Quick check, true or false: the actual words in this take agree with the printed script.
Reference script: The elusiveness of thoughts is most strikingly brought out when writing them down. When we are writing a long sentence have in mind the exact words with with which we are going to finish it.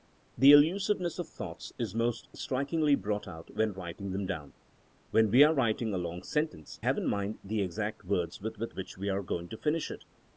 true